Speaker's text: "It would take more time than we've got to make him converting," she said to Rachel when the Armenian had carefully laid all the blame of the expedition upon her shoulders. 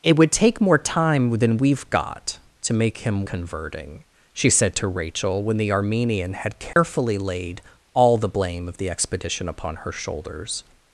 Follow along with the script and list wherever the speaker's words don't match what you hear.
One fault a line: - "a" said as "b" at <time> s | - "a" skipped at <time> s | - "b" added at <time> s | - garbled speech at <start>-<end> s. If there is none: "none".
none